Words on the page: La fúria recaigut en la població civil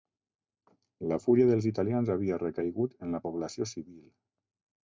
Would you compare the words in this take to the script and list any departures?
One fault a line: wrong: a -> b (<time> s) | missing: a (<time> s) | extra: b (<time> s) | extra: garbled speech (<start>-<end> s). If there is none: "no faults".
extra: dels italians havia (1.5 s)